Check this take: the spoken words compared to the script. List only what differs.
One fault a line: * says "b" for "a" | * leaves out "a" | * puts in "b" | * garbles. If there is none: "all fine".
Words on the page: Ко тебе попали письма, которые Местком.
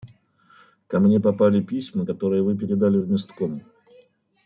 * says "мне" for "тебе"
* puts in "Вы передали в"